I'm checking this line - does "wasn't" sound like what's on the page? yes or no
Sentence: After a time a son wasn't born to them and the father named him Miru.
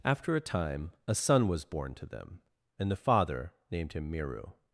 no